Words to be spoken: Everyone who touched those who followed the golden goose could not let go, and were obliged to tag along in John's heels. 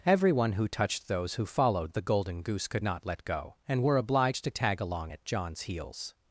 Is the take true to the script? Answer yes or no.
no